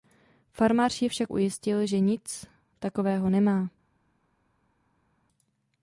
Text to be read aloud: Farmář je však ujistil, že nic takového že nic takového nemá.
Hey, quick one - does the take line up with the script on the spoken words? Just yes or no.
no